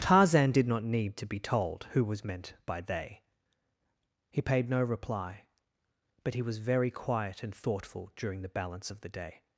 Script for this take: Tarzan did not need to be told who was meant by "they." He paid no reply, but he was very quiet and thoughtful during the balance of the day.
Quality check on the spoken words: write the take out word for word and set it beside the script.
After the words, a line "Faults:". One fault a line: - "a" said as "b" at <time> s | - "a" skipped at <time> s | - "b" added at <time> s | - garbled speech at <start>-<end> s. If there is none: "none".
Tarzan did not need to be told who was meant by "they." He paid no reply, but he was very quiet and thoughtful during the balance of the day.
Faults:
none